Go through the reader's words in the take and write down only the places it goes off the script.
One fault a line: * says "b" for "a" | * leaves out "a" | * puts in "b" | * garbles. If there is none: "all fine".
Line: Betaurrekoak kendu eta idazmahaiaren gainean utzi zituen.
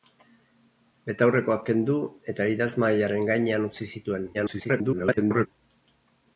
* garbles